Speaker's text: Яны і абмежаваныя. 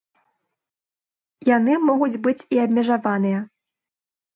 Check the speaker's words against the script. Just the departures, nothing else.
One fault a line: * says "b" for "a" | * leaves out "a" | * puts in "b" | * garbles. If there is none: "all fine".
* puts in "могуць быць"